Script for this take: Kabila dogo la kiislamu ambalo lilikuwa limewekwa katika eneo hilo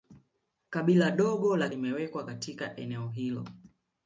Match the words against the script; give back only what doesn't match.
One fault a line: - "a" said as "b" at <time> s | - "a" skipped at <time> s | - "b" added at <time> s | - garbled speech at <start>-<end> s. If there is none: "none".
- "kiislamu ambalo lilikuwa" skipped at 1.7 s